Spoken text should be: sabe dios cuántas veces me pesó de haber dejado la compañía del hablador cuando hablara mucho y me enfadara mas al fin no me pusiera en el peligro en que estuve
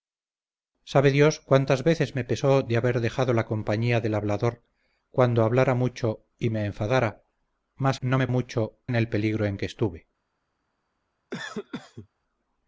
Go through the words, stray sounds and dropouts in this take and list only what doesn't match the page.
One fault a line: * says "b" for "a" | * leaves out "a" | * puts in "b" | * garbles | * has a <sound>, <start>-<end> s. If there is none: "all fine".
* leaves out "al fin"
* says "mucho" for "pusiera"
* has a cough, 11.3-12.1 s